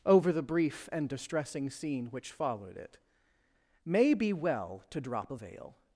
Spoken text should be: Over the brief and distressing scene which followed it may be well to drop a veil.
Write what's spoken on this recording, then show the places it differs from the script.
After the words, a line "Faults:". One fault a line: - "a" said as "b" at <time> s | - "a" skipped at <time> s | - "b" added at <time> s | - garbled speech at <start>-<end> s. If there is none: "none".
Over the brief and distressing scene which followed it may be well to drop a veil.
Faults:
none